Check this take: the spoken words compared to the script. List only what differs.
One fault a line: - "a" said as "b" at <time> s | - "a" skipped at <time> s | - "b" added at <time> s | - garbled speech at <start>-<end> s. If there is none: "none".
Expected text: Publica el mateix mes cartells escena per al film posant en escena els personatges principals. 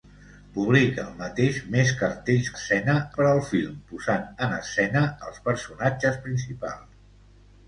none